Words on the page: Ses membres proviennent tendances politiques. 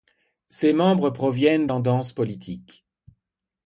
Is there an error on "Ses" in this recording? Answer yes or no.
no